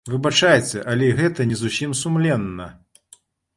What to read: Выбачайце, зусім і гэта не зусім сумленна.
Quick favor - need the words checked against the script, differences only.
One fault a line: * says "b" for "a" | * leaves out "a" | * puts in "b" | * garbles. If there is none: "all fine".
* says "але" for "зусім"